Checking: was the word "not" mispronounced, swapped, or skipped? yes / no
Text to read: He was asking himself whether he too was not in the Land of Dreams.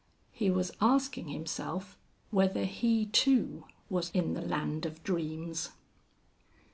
yes